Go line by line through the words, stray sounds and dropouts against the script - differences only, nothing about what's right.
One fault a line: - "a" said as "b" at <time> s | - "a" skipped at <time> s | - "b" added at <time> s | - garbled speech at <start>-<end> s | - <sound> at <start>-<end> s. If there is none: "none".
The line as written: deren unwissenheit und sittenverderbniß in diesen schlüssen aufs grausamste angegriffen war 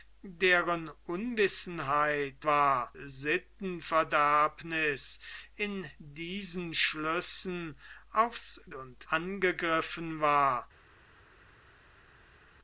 - "und" said as "war" at 2.4 s
- "grausamste" said as "und" at 8.7 s